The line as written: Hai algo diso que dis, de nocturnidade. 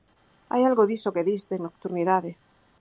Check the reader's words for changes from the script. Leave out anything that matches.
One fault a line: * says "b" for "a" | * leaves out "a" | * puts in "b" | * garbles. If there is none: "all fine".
all fine